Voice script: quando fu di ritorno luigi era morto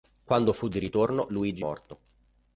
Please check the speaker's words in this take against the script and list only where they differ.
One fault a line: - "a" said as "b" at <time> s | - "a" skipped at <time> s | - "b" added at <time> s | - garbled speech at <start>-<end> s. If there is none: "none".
- "era" skipped at 1.7 s